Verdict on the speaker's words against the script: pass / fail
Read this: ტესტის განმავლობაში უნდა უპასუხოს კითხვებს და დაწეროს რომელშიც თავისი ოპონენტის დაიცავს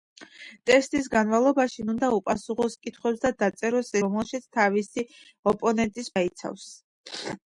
pass